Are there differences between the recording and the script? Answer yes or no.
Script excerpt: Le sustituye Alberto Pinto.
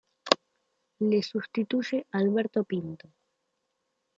no